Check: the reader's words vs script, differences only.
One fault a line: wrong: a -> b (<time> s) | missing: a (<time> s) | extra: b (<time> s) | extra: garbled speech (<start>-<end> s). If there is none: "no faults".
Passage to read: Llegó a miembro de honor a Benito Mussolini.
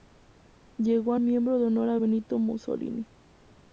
no faults